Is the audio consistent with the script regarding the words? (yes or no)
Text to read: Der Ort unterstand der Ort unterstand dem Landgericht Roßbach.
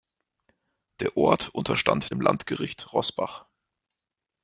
no